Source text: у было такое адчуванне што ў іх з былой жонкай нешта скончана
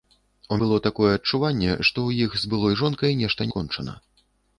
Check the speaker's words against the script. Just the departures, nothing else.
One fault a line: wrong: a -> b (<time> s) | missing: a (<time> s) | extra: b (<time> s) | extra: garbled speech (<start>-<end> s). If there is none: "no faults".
no faults